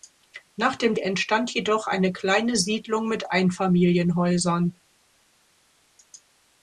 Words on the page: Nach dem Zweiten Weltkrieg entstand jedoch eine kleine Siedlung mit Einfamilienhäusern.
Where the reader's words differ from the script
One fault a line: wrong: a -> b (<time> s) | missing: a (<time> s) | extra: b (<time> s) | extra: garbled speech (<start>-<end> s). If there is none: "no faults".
missing: Zweiten Weltkrieg (0.9 s)